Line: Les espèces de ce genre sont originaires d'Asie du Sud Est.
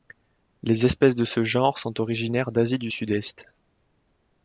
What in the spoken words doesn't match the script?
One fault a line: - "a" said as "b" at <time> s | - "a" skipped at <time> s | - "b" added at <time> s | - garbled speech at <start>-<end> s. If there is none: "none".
none